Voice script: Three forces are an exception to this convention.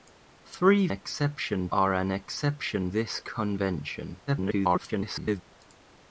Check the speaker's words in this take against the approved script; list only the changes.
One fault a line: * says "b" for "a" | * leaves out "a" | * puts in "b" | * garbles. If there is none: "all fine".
* says "exception" for "forces"
* leaves out "to"
* garbles